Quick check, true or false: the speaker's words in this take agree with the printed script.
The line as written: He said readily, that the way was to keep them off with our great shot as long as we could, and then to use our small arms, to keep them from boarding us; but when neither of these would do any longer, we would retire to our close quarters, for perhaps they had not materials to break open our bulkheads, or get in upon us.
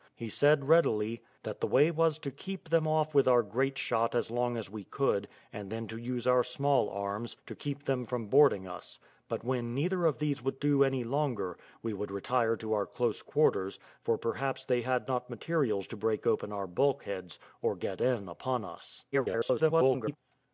false